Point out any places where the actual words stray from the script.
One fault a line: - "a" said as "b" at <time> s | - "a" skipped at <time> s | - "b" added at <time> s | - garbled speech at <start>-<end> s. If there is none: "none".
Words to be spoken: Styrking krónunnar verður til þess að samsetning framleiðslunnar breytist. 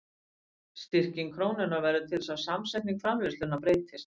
none